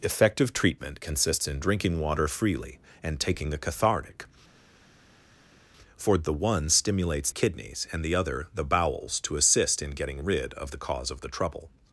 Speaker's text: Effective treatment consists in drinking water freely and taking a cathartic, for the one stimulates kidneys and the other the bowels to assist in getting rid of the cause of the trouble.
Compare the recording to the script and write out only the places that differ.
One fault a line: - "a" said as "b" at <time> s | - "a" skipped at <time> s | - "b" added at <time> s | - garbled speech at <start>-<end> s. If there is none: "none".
none